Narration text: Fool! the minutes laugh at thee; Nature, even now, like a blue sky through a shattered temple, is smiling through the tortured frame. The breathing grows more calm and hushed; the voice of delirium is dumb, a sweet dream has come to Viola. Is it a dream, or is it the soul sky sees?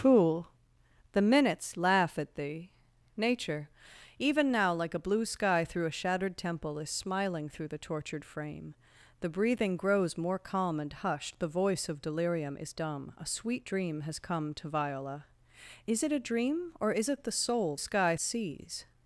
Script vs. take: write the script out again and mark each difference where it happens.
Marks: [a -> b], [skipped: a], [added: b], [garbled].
Fool! the minutes laugh at thee; Nature, even now, like a blue sky through a shattered temple, is smiling through the tortured frame. The breathing grows more calm and hushed; the voice of delirium is dumb, a sweet dream has come to Viola. Is it a dream, or is it the soul sky sees?